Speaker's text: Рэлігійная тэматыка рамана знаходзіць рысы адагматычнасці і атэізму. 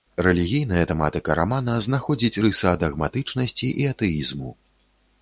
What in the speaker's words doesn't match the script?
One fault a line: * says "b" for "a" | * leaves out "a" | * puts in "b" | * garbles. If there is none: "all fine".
all fine